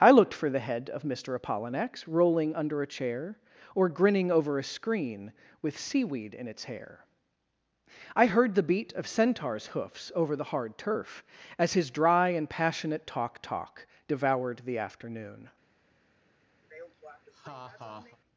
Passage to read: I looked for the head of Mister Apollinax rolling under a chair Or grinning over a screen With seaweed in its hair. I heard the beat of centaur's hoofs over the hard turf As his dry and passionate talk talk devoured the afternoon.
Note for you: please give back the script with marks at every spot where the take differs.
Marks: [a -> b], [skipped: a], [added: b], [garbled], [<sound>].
I looked for the head of Mister Apollinax rolling under a chair Or grinning over a screen With seaweed in its hair. I heard the beat of centaur's hoofs over the hard turf As his dry and passionate talk talk devoured the afternoon. [laugh]